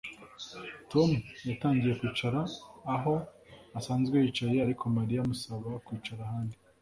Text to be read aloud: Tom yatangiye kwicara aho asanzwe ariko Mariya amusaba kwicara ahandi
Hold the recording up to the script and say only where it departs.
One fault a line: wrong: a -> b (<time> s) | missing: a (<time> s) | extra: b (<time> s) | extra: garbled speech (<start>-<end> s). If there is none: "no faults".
extra: yicaye (4.2 s)